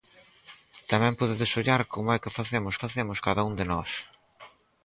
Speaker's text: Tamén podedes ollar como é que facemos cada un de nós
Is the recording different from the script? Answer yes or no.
yes